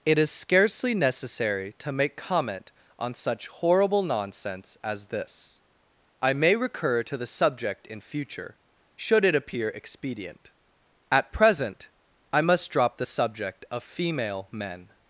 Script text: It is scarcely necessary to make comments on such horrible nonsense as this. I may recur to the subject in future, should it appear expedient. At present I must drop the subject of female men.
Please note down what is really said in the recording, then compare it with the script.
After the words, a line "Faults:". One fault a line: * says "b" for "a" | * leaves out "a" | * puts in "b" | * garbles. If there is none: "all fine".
It is scarcely necessary to make comment on such horrible nonsense as this. I may recur to the subject in future, should it appear expedient. At present I must drop the subject of female men.
Faults:
* says "comment" for "comments"